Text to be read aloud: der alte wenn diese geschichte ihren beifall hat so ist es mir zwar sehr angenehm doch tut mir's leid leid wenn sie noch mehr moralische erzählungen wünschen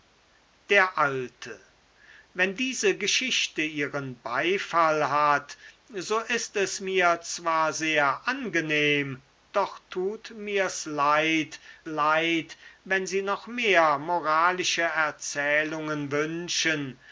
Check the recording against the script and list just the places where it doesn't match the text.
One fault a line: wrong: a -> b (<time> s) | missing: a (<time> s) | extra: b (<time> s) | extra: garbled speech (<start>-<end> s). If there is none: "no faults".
no faults